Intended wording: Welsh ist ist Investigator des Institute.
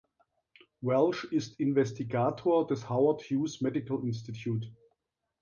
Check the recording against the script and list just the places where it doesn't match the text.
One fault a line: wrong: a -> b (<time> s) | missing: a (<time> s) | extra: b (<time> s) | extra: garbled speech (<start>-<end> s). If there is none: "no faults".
missing: ist (1.6 s)
extra: Howard Hughes Medical (2.9 s)